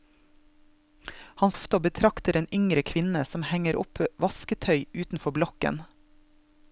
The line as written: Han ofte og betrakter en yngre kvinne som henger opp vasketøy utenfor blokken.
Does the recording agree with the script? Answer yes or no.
yes